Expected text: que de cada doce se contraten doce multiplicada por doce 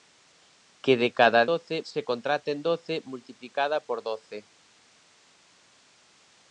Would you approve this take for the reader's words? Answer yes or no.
yes